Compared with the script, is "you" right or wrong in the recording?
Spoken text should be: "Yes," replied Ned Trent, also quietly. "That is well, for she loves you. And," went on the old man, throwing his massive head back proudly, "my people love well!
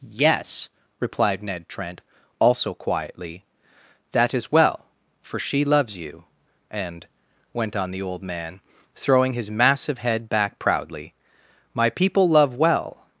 right